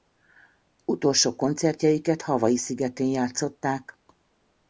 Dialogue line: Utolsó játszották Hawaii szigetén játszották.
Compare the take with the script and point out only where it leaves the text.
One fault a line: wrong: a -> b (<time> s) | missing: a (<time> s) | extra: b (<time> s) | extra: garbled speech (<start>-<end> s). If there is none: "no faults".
wrong: játszották -> koncertjeiket (1.4 s)